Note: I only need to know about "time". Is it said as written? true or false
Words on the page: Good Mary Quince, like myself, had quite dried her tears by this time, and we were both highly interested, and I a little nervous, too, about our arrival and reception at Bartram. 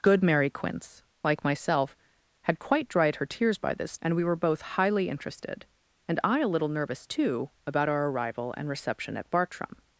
false